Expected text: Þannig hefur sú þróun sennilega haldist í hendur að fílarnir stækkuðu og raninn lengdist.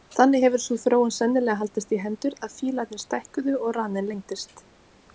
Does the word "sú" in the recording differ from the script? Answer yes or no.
no